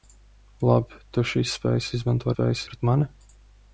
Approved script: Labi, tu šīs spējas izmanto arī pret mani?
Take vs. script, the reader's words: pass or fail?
fail